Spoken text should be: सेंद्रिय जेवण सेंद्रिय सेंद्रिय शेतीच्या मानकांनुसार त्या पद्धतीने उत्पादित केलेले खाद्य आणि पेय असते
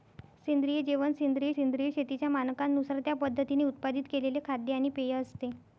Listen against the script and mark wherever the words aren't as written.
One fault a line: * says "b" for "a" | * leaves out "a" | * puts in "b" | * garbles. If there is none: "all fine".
all fine